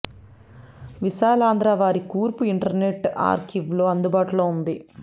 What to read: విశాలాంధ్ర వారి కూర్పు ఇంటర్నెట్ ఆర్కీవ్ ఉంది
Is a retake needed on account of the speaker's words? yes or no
yes